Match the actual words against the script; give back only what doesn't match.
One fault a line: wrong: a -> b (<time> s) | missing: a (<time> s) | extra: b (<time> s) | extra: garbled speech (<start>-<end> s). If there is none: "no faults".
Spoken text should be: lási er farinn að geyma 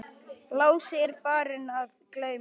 no faults